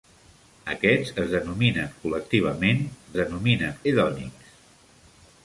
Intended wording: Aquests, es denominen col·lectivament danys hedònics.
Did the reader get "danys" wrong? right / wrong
wrong